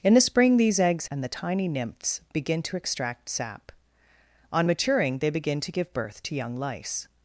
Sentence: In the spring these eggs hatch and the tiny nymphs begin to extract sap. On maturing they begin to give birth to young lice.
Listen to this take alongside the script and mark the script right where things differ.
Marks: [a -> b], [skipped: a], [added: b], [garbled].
In the spring these eggs [skipped: hatch] and the tiny nymphs begin to extract sap. On maturing they begin to give birth to young lice.